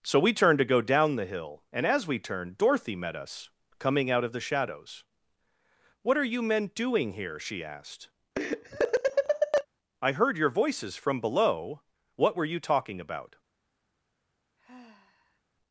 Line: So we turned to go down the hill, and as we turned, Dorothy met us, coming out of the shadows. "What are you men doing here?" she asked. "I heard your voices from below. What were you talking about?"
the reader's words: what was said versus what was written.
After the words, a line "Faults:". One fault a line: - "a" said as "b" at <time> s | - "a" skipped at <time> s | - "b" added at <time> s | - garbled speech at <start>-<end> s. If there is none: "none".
So we turned to go down the hill, and as we turned, Dorothy met us, coming out of the shadows. "What are you men doing here?" she asked. "I heard your voices from below. What were you talking about?"
Faults:
none